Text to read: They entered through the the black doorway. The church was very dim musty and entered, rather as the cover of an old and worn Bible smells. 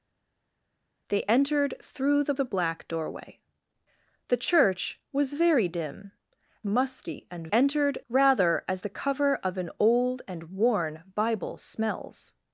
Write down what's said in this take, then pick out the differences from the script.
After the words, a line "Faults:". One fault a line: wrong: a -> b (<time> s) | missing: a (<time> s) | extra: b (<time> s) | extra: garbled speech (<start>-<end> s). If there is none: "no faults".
They entered through the the black doorway. The church was very dim musty and entered, rather as the cover of an old and worn Bible smells.
Faults:
no faults